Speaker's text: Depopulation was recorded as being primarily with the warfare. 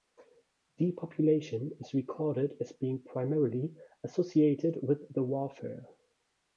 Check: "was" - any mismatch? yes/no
yes